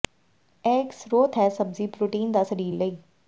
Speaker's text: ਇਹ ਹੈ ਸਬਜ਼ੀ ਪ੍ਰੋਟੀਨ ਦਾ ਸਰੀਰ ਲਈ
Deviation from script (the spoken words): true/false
true